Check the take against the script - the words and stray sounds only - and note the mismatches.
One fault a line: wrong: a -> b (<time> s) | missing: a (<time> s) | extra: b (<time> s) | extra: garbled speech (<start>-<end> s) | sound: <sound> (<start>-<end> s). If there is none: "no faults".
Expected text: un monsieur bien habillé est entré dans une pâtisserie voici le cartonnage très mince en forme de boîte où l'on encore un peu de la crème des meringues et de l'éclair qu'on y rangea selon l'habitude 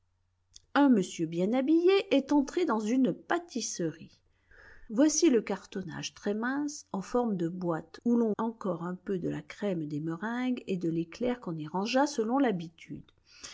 no faults